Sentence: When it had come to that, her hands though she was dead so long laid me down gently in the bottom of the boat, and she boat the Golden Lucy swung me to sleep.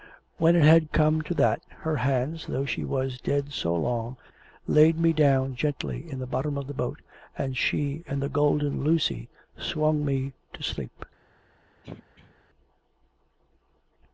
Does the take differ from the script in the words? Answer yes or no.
yes